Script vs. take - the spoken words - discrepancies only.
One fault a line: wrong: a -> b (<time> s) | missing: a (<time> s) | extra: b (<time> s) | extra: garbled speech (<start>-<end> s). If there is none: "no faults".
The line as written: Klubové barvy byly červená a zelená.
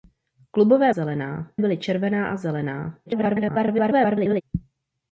wrong: barvy -> zelená (0.9 s)
extra: garbled speech (3.1-4.4 s)